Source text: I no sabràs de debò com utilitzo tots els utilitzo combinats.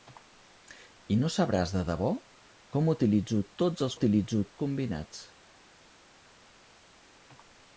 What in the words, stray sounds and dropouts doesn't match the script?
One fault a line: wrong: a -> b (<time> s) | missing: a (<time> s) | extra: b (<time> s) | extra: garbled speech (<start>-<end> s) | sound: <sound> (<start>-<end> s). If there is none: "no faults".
no faults